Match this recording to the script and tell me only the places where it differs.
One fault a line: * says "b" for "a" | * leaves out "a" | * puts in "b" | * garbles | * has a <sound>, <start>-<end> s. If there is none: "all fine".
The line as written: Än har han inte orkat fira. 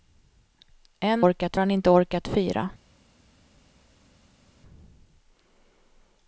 * says "orkat" for "har"